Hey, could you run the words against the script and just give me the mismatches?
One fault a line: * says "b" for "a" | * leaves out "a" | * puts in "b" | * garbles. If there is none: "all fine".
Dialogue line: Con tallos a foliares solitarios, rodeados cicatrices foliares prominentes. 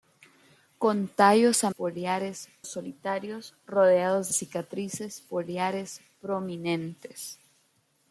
all fine